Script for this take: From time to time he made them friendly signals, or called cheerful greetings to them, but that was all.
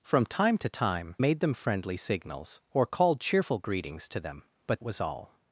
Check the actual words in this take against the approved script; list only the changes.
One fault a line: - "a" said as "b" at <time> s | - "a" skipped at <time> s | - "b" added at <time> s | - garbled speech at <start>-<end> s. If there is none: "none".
- "he" skipped at 1.1 s
- "that" skipped at 4.8 s